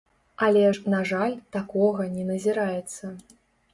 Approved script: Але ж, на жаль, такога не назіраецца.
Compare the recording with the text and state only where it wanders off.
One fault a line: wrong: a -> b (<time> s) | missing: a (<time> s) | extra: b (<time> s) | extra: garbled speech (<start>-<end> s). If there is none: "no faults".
no faults